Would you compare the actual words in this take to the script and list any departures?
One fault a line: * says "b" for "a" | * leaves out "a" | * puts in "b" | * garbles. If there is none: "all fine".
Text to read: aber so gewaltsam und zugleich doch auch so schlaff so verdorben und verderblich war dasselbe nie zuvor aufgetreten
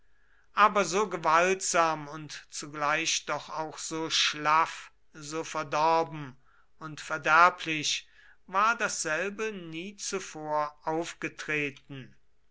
all fine